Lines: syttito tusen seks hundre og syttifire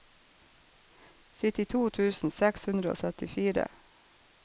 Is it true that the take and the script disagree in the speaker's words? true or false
false